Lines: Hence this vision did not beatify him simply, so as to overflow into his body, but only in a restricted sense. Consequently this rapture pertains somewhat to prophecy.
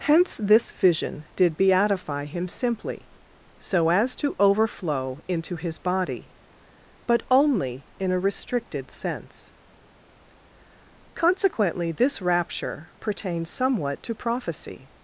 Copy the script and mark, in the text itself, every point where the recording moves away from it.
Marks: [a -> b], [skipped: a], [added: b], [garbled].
Hence this vision did [skipped: not] beatify him simply, so as to overflow into his body, but only in a restricted sense. Consequently this rapture pertains somewhat to prophecy.